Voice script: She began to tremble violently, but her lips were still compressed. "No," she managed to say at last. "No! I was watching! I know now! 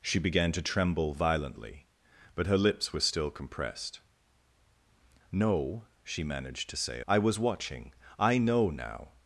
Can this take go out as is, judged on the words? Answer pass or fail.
fail